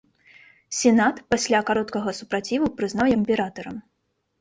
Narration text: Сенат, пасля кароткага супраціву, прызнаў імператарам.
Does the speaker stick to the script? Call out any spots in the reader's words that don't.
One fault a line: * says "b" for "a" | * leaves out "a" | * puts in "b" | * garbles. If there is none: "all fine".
all fine